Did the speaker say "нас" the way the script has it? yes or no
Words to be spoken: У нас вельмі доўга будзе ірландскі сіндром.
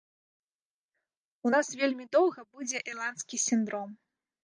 yes